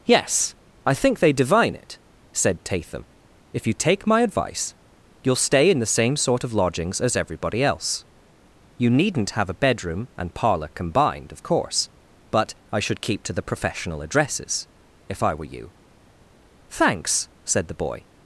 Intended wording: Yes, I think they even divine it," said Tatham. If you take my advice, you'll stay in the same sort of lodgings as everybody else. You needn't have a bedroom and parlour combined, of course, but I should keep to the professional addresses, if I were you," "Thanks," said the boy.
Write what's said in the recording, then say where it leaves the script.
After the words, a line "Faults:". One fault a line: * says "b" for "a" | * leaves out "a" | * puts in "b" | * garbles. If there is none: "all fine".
Yes, I think they divine it," said Tatham. If you take my advice, you'll stay in the same sort of lodgings as everybody else. You needn't have a bedroom and parlour combined, of course, but I should keep to the professional addresses, if I were you," "Thanks," said the boy.
Faults:
* leaves out "even"